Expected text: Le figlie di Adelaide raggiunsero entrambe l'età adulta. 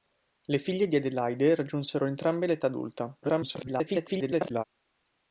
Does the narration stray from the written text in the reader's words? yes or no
yes